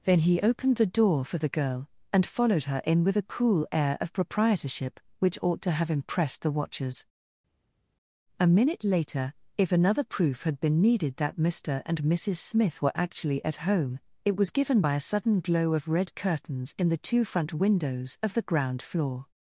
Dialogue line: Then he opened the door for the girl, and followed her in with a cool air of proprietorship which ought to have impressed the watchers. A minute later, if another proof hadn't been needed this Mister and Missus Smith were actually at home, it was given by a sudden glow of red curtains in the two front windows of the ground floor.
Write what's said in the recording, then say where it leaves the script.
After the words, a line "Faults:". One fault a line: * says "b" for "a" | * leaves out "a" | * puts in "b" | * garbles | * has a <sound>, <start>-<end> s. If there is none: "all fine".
Then he opened the door for the girl, and followed her in with a cool air of proprietorship which ought to have impressed the watchers. A minute later, if another proof had been needed that Mister and Missus Smith were actually at home, it was given by a sudden glow of red curtains in the two front windows of the ground floor.
Faults:
* says "had" for "hadn't"
* says "that" for "this"